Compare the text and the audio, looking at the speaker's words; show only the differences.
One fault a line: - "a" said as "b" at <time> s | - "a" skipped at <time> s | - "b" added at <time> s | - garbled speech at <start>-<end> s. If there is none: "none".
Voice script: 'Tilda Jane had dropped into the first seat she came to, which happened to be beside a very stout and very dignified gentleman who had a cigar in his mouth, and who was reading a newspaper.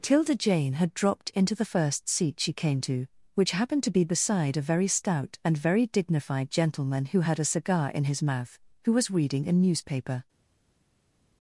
- "and" skipped at 8.6 s